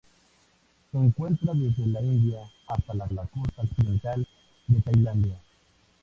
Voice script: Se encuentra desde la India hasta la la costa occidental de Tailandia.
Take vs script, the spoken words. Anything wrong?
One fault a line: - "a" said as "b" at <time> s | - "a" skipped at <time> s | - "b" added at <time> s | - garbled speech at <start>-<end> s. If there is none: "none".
none